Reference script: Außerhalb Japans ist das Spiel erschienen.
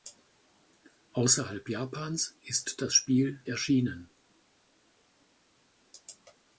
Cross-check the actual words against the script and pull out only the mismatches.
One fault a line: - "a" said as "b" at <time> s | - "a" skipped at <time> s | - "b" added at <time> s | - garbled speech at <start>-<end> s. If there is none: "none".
none